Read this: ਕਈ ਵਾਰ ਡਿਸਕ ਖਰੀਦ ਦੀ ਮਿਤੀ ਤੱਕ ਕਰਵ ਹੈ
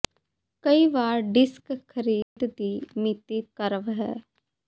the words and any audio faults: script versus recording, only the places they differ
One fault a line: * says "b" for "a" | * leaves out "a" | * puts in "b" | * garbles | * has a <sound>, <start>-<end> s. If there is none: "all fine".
* has a dropout, 2.2-2.4 s
* leaves out "ਤੱਕ"